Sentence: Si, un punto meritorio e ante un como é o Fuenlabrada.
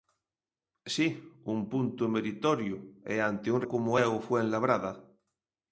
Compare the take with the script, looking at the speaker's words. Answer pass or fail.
pass